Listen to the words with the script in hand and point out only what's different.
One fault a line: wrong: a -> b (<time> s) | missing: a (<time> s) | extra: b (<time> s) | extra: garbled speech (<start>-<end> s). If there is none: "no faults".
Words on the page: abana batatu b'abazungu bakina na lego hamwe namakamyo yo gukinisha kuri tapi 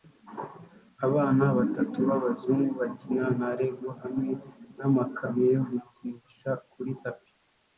no faults